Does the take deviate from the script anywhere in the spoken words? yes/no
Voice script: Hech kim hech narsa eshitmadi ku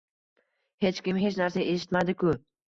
no